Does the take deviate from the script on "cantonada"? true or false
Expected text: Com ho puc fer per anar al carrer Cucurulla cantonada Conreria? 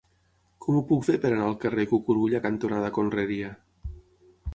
false